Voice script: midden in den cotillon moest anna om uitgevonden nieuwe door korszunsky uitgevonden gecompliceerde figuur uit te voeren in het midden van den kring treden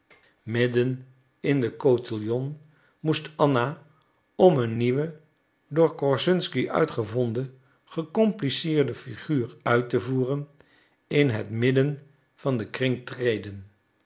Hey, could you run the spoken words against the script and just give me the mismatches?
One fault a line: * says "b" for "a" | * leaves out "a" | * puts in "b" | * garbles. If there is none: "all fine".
* says "een" for "uitgevonden"